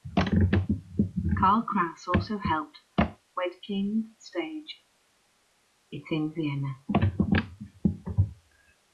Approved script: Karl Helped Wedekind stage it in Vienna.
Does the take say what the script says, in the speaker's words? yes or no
no